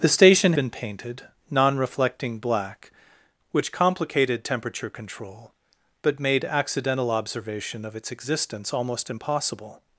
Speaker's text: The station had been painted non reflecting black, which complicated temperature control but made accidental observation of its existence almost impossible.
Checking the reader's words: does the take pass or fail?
fail